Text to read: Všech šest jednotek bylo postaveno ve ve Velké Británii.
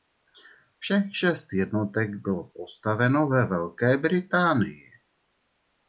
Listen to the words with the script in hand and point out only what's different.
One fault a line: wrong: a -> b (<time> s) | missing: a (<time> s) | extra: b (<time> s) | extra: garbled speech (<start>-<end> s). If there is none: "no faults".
missing: ve (3.4 s)